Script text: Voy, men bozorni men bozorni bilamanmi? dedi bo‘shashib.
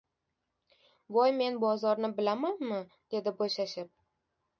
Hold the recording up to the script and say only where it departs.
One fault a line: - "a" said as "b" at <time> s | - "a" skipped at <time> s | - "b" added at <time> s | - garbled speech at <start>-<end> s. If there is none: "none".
- "men bozorni" skipped at 2.1 s